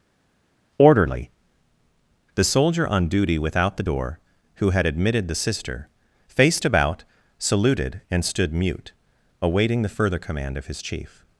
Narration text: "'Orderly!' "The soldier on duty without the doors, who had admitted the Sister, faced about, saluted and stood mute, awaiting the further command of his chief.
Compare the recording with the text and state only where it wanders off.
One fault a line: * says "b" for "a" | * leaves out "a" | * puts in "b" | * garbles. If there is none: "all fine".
* says "door" for "doors"